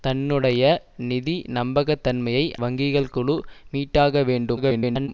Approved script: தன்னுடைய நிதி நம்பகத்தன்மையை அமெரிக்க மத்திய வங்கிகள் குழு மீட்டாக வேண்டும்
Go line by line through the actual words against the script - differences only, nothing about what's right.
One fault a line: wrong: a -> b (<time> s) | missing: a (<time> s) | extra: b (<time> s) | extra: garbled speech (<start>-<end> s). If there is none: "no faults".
missing: அமெரிக்க மத்திய (2.5 s)
extra: garbled speech (4.6-5.1 s)